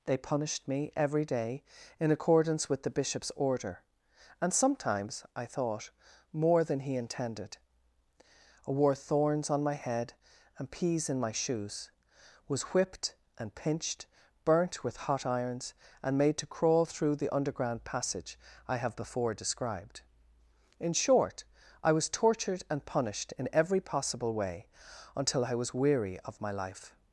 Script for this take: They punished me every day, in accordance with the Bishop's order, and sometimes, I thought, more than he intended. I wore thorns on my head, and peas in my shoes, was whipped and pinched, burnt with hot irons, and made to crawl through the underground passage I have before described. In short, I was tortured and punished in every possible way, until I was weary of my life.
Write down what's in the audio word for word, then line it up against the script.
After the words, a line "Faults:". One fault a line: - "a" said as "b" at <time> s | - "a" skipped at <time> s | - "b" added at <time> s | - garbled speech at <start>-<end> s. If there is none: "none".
They punished me every day, in accordance with the Bishop's order, and sometimes, I thought, more than he intended. I wore thorns on my head, and peas in my shoes, was whipped and pinched, burnt with hot irons, and made to crawl through the underground passage I have before described. In short, I was tortured and punished in every possible way, until I was weary of my life.
Faults:
none